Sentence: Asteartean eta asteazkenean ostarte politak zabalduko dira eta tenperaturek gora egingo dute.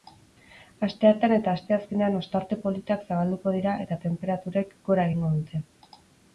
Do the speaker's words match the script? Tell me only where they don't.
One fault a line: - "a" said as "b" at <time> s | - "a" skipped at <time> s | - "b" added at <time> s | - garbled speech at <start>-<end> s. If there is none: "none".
none